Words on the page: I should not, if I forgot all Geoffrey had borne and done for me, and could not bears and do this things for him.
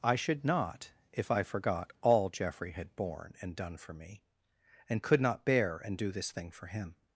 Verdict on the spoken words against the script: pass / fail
fail